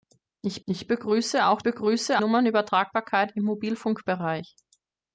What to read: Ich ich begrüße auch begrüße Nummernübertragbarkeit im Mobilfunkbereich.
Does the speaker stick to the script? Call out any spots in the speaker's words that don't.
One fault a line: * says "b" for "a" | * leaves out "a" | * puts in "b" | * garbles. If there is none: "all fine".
all fine